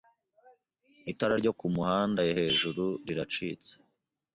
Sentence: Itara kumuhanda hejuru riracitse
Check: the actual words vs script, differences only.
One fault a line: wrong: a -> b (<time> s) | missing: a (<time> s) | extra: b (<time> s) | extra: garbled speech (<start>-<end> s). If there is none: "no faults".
extra: ryo (1.4 s)